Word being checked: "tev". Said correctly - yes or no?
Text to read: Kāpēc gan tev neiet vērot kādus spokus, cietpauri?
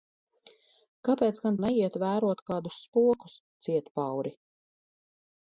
no